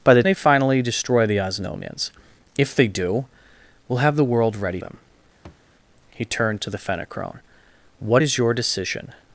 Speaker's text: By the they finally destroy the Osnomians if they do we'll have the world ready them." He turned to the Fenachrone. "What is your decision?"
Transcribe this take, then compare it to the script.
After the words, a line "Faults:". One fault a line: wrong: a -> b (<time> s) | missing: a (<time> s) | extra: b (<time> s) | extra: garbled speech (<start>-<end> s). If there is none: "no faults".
By the they finally destroy the Osnomians if they do we'll have the world ready them." He turned to the Fenachrone. "What is your decision?"
Faults:
no faults